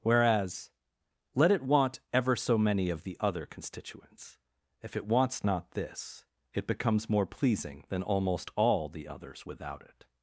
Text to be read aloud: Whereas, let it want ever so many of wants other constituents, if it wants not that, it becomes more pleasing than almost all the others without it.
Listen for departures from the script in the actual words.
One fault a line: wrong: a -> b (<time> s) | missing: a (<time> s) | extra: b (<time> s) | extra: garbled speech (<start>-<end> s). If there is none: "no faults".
wrong: wants -> the (3.0 s)
wrong: that -> this (5.7 s)